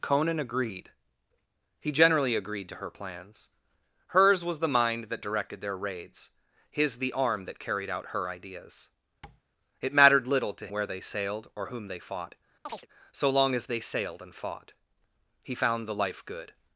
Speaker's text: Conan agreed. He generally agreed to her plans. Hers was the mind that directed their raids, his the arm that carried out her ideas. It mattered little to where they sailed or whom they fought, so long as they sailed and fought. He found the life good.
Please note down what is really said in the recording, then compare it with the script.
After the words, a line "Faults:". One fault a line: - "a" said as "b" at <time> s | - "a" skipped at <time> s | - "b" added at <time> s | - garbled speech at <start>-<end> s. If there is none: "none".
Conan agreed. He generally agreed to her plans. Hers was the mind that directed their raids, his the arm that carried out her ideas. It mattered little to where they sailed or whom they fought, so long as they sailed and fought. He found the life good.
Faults:
none